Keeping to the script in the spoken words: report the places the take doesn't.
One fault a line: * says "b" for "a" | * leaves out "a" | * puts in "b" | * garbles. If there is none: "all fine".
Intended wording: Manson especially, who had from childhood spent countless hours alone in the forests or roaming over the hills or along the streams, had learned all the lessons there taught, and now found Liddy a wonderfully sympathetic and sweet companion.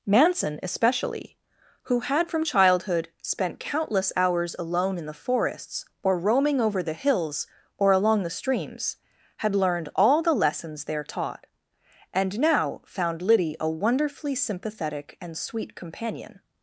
all fine